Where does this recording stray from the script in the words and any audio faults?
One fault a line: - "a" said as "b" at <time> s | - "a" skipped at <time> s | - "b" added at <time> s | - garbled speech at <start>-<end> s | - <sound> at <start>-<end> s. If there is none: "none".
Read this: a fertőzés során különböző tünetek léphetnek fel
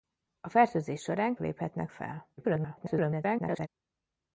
- "különböző tünetek" skipped at 1.4 s
- garbled speech at 2.4-3.7 s